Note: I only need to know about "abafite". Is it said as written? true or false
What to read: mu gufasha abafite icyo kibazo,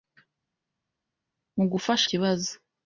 false